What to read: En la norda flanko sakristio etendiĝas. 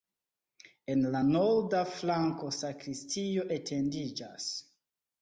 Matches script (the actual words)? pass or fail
pass